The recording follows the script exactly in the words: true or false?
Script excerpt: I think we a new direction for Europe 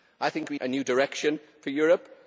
true